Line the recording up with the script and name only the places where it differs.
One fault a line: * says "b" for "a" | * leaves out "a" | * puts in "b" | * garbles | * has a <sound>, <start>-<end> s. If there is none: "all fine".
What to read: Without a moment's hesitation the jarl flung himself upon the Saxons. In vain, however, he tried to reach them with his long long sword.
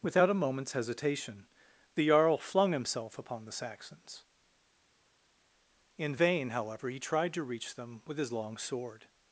* leaves out "long"